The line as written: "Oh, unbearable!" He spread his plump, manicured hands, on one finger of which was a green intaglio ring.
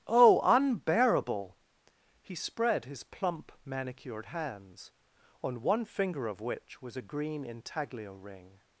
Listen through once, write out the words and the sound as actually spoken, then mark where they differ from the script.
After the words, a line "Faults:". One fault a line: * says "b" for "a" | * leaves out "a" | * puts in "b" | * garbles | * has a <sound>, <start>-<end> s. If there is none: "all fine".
"Oh, unbearable!" He spread his plump, manicured hands, on one finger of which was a green intaglio ring.
Faults:
all fine